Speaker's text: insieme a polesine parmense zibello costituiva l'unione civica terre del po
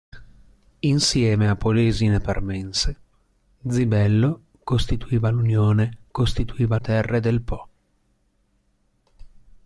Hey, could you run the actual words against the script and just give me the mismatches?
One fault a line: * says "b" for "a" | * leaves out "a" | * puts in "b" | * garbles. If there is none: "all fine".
* says "costituiva" for "civica"